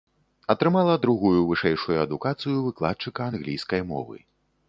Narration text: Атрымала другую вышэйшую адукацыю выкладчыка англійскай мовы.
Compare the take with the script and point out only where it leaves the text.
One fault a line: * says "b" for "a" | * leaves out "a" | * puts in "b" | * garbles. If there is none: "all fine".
all fine